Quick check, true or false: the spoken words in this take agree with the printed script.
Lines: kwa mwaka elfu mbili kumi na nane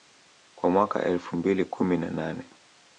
true